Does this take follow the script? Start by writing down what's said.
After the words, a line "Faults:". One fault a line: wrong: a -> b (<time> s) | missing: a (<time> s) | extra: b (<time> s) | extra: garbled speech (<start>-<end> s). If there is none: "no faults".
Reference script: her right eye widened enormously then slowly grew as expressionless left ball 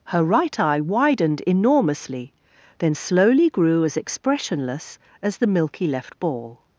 her right eye widened enormously then slowly grew as expressionless as the milky left ball
Faults:
extra: as the milky (5.2 s)